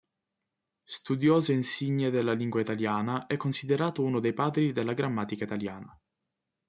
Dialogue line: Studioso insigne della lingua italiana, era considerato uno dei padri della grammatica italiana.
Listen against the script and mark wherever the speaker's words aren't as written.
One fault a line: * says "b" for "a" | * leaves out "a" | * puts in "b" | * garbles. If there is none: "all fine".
* says "è" for "era"